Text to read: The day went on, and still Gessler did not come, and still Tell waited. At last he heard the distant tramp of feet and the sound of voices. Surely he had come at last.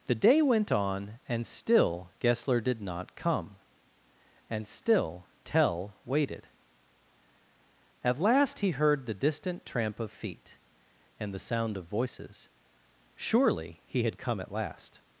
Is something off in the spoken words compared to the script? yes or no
no